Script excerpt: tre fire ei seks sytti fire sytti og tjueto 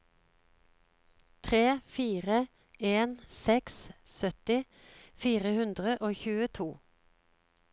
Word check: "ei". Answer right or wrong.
wrong